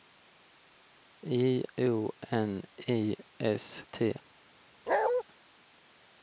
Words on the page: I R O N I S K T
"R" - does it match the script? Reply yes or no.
no